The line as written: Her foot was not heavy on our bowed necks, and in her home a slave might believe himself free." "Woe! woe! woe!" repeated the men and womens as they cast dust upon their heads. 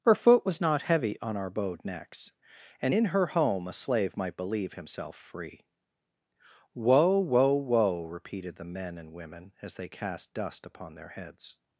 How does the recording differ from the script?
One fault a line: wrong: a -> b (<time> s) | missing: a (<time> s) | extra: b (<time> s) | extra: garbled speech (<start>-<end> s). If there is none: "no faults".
wrong: womens -> women (9.1 s)